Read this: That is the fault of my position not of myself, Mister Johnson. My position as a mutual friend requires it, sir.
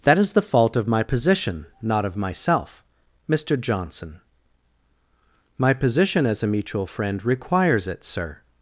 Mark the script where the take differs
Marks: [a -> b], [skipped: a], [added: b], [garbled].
That is the fault of my position not of myself, Mister Johnson. My position as a mutual friend requires it, sir.